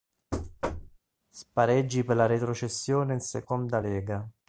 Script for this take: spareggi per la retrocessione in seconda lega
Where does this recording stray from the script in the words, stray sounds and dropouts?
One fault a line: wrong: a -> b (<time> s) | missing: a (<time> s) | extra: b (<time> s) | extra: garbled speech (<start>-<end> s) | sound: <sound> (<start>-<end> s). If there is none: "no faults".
sound: thud (0.3-1.0 s)